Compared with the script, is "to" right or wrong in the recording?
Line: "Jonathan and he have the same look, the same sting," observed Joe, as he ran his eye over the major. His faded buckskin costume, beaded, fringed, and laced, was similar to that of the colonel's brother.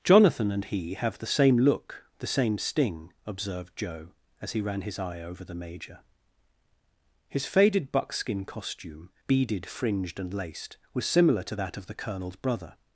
right